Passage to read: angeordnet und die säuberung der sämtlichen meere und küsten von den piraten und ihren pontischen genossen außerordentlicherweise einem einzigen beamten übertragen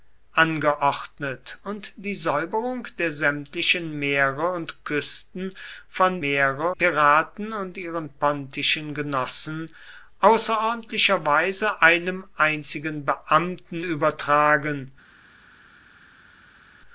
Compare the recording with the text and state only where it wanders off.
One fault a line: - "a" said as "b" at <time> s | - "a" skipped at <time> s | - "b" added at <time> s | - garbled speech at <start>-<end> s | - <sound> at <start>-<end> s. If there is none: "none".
- "den" said as "meere" at 6.2 s